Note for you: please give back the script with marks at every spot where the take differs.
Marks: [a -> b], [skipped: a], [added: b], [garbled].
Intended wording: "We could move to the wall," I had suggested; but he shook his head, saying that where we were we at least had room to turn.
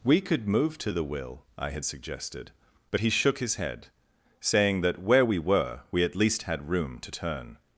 "We could move to the [wall," -> will] I had suggested; but he shook his head, saying that where we were we at least had room to turn.